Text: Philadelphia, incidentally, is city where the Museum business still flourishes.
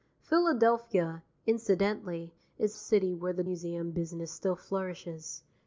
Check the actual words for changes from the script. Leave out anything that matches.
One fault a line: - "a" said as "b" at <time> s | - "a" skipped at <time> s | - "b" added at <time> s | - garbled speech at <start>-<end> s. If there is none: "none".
none